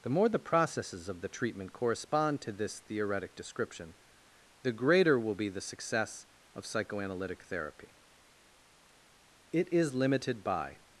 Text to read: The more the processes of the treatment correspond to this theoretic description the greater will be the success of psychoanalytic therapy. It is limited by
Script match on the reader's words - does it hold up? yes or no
yes